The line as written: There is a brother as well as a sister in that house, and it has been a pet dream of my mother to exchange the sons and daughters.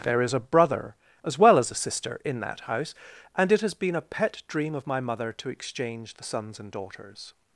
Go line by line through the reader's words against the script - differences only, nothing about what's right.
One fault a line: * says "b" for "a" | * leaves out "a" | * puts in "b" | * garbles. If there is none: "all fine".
all fine